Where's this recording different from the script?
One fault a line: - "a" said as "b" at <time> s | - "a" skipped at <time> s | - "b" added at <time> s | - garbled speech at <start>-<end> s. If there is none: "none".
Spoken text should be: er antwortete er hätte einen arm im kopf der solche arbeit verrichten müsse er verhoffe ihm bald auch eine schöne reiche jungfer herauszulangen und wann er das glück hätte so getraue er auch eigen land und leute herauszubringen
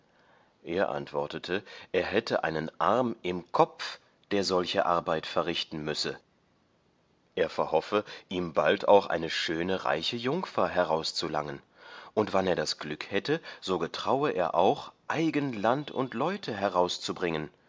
none